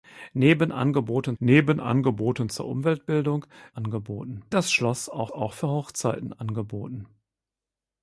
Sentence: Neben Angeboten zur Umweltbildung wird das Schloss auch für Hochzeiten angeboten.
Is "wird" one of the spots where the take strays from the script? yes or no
yes